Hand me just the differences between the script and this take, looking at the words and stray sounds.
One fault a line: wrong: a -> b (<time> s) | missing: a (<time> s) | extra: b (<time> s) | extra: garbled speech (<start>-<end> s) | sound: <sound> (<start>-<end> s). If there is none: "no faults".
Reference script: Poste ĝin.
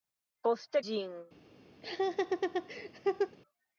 sound: laugh (1.8-3.4 s)